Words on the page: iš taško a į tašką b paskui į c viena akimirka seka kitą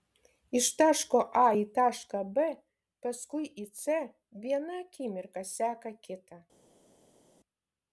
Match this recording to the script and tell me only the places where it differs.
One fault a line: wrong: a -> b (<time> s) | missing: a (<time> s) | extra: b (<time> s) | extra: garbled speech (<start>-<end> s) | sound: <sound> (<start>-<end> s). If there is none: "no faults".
no faults